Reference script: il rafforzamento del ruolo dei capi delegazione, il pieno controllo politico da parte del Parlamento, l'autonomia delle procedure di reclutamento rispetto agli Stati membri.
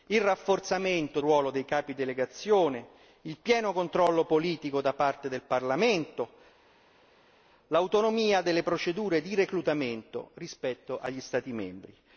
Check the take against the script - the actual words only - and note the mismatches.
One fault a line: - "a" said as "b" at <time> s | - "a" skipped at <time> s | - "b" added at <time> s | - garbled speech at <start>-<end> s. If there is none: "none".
- "del" skipped at 1.2 s